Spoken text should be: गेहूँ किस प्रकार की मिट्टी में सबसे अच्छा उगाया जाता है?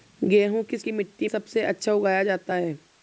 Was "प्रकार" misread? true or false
true